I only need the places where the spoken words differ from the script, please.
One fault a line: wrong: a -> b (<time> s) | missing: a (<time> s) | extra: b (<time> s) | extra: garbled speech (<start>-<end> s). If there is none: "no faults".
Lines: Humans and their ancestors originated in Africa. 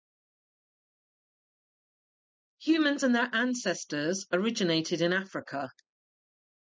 no faults